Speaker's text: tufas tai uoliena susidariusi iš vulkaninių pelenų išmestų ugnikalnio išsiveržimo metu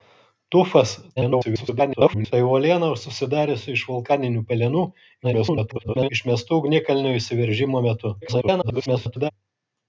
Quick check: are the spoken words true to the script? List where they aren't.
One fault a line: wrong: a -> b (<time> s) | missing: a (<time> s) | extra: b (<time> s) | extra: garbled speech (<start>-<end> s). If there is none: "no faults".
extra: garbled speech (1.2-2.3 s)
extra: garbled speech (5.2-6.1 s)
extra: garbled speech (8.2-9.3 s)